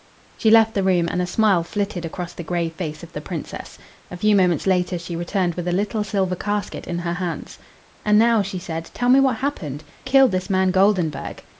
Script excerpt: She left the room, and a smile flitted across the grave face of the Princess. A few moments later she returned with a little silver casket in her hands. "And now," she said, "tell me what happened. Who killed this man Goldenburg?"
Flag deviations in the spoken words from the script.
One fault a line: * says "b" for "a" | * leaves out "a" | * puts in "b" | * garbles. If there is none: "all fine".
* leaves out "Who"